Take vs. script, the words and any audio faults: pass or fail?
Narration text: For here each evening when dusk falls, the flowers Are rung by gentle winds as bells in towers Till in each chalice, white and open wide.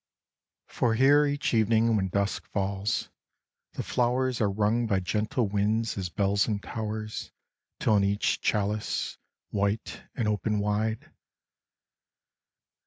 pass